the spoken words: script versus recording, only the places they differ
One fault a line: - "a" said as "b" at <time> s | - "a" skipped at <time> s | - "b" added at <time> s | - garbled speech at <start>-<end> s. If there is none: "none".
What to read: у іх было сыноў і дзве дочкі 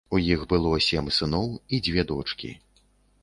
- "сем" added at 0.8 s